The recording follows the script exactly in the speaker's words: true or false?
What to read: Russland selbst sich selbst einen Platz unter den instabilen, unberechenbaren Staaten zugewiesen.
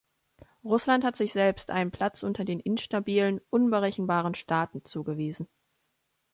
false